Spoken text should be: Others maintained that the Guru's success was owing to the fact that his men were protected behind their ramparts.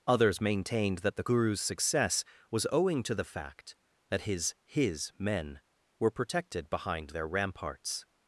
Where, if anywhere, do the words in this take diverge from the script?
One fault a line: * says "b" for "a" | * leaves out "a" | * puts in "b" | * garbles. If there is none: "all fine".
* puts in "his"